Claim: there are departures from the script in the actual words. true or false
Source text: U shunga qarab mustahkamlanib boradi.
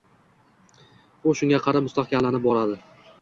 false